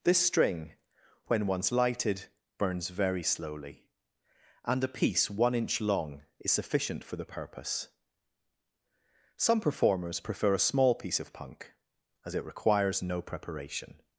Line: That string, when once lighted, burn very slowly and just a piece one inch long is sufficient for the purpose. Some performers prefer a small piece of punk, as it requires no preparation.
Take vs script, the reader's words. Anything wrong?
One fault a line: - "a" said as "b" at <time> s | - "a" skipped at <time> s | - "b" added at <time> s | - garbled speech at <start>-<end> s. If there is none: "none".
- "That" said as "This" at 0.0 s
- "burn" said as "burns" at 2.6 s
- "just" skipped at 4.8 s